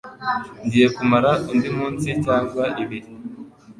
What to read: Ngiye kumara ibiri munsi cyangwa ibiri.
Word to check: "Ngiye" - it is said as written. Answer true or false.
true